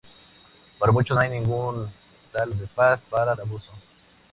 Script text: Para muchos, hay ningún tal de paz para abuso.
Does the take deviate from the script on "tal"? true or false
false